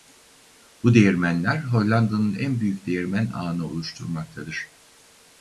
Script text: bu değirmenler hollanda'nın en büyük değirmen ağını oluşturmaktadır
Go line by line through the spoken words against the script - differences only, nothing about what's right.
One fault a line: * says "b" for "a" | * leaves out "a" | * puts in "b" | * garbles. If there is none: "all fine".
all fine